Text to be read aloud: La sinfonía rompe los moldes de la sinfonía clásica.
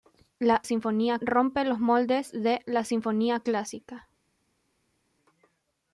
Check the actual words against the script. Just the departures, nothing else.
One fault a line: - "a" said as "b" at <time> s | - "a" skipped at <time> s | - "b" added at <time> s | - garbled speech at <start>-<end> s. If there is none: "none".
none